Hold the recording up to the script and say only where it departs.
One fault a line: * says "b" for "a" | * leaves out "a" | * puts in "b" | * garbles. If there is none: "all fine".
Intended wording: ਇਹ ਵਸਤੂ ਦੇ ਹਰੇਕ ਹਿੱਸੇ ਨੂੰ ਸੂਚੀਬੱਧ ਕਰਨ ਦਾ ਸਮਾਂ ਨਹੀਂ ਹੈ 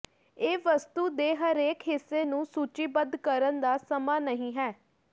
all fine